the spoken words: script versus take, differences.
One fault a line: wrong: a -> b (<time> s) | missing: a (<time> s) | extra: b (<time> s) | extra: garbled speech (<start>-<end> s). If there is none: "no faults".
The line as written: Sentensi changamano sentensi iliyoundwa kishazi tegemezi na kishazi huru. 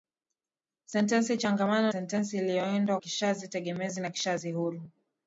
no faults